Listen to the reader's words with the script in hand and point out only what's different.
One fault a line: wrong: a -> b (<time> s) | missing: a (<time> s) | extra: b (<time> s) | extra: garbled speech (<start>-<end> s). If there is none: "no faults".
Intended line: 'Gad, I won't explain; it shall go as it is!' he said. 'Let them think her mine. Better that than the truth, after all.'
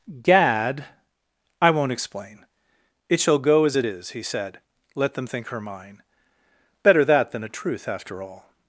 wrong: the -> a (7.4 s)